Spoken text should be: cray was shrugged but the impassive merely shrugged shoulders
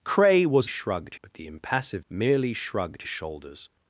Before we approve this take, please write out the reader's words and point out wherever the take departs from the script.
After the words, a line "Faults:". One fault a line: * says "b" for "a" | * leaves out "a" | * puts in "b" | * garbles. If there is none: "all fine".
cray was shrugged but the impassive merely shrugged shoulders
Faults:
all fine